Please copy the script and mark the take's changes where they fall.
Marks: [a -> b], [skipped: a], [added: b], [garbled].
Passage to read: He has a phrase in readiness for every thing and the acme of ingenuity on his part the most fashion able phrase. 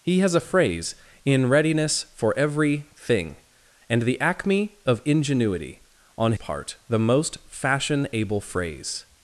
He has a phrase in readiness for every thing and the acme of ingenuity on [skipped: his] part the most fashion able phrase.